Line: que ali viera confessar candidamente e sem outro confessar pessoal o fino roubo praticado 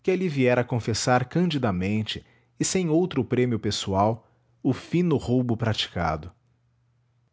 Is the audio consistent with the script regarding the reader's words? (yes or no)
no